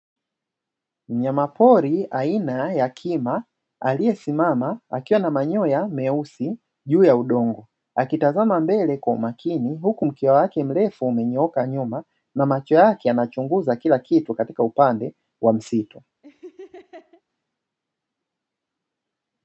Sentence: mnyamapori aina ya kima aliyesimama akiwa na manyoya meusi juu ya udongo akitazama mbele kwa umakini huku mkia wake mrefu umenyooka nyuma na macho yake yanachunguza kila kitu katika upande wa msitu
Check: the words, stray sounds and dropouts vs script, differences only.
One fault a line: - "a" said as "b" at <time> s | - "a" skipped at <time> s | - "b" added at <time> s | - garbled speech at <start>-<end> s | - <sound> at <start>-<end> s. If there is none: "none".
- laugh at 16.2-17.2 s